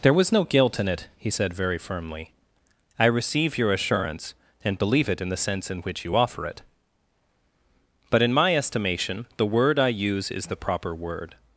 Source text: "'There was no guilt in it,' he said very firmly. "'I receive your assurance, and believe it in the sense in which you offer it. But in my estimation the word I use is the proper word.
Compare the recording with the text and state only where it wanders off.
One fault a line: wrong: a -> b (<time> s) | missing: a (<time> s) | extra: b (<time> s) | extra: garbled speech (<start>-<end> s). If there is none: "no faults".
no faults